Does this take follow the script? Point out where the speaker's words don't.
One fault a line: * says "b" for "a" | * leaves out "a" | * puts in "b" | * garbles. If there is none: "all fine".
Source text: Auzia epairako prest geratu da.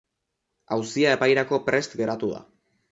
all fine